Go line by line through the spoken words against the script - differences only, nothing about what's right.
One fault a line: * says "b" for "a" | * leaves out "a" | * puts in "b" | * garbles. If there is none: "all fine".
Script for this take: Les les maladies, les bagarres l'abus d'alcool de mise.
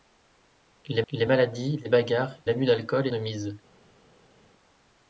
all fine